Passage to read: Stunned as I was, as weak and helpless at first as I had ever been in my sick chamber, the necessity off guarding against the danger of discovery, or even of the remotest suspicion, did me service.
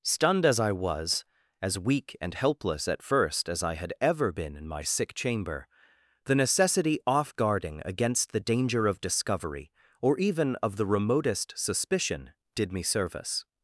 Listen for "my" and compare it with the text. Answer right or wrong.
right